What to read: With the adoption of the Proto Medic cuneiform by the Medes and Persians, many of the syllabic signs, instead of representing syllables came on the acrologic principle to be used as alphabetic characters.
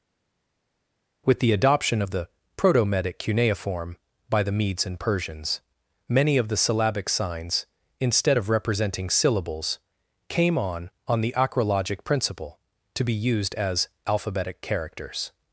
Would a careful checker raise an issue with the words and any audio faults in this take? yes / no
yes